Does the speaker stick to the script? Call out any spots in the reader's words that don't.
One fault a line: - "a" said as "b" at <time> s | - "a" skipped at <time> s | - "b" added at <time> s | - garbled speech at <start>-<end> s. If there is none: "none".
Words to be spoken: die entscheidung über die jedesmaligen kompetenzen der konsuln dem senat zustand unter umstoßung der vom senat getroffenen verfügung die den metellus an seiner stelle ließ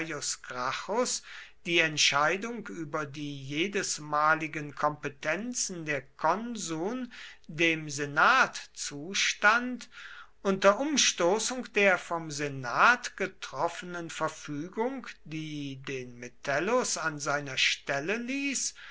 none